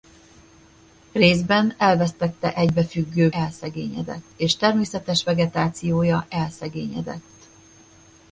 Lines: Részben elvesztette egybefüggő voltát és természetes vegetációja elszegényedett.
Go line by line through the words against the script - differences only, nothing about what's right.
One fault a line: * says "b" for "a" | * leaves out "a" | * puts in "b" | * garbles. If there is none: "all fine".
* says "elszegényedett" for "voltát"